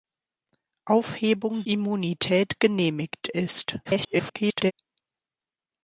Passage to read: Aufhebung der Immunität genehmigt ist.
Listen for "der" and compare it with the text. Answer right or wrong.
wrong